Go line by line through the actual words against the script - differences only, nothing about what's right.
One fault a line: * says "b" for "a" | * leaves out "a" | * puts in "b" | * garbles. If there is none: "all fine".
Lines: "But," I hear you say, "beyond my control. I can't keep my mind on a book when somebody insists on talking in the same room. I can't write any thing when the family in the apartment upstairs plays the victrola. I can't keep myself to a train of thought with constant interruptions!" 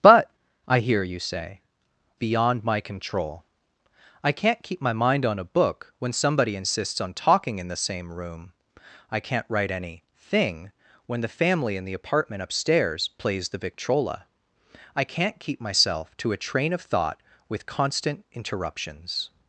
all fine